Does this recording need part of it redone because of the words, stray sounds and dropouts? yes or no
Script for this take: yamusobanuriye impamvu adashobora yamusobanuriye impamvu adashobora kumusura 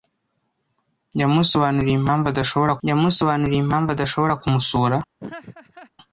yes